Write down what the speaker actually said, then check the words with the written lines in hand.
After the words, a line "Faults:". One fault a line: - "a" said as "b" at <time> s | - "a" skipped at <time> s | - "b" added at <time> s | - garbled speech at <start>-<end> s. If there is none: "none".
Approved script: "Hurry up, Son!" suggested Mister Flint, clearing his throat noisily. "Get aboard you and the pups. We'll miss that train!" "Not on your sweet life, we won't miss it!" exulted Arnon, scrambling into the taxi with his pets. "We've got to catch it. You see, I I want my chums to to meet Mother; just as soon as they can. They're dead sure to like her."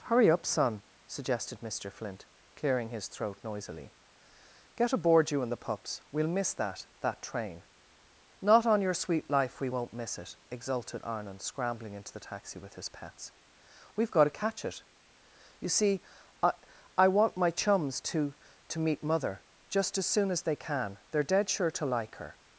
"Hurry up, Son!" suggested Mister Flint, clearing his throat noisily. "Get aboard you and the pups. We'll miss that that train!" "Not on your sweet life, we won't miss it!" exulted Arnon, scrambling into the taxi with his pets. "We've got to catch it. You see, I I want my chums to to meet Mother; just as soon as they can. They're dead sure to like her."
Faults:
- "that" added at 7.0 s